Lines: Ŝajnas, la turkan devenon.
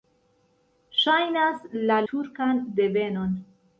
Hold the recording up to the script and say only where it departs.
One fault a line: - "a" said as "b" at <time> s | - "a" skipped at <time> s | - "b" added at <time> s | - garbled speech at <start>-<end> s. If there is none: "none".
none